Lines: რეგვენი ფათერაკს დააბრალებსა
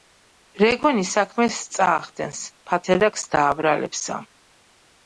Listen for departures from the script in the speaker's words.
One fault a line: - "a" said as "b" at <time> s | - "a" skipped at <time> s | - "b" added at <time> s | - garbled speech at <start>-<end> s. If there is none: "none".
- "საქმეს წაახდენს" added at 1.1 s